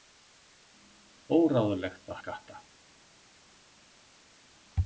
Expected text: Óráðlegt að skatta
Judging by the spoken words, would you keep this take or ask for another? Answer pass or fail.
pass